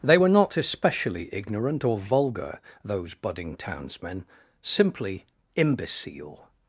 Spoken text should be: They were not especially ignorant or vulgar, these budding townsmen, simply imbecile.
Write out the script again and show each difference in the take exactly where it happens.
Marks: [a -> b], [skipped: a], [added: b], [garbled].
They were not especially ignorant or vulgar, [these -> those] budding townsmen, simply imbecile.